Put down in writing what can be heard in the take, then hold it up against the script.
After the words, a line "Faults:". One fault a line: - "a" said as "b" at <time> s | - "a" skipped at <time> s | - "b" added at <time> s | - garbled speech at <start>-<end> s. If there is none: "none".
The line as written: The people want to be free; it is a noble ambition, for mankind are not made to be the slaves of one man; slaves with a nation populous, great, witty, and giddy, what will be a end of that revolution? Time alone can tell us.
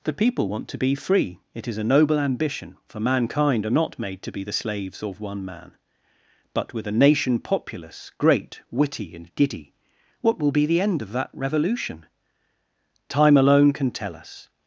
The people want to be free; it is a noble ambition, for mankind are not made to be the slaves of one man; but with a nation populous, great, witty, and giddy, what will be the end of that revolution? Time alone can tell us.
Faults:
- "slaves" said as "but" at 6.5 s
- "a" said as "the" at 10.7 s